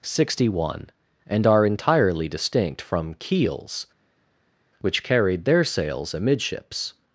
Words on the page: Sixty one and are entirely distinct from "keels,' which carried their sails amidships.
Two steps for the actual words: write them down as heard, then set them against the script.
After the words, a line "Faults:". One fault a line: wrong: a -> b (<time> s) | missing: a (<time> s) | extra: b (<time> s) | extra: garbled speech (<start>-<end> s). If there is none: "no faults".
Sixty one and are entirely distinct from "keels,' which carried their sails amidships.
Faults:
no faults